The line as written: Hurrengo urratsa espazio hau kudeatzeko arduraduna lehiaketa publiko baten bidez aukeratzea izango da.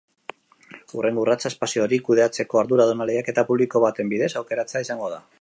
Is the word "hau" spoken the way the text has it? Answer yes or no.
no